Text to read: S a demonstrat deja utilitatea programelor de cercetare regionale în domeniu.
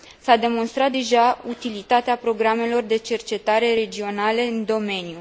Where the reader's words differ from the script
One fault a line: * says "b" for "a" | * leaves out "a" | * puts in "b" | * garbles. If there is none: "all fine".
all fine